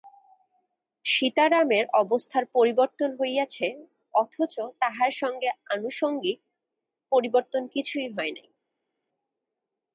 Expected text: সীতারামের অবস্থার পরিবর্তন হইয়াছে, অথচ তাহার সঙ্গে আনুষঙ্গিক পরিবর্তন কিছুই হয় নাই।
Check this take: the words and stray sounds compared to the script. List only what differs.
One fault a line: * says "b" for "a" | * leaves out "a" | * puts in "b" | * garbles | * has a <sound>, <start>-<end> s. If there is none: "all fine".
all fine